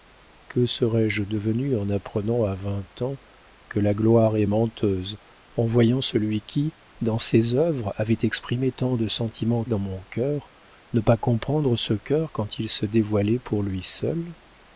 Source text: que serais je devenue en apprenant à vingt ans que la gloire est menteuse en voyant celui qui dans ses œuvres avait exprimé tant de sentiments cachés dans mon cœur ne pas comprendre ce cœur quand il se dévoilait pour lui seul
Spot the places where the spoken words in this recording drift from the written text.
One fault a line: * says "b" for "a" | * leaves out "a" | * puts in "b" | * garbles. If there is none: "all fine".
* leaves out "cachés"